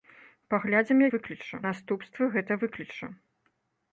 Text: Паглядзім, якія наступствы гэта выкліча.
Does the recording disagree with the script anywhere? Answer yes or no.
yes